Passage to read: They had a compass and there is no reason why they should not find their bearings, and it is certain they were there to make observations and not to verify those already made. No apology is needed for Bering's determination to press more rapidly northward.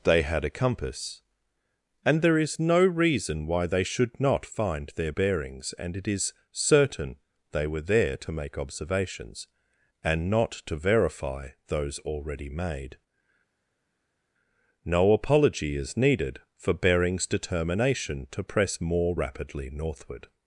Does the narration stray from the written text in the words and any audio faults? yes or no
no